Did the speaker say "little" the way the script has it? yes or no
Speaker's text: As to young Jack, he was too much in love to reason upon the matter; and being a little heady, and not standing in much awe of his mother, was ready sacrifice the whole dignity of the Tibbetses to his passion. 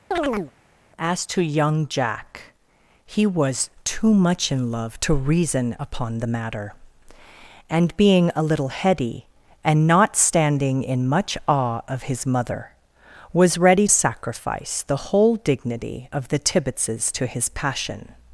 yes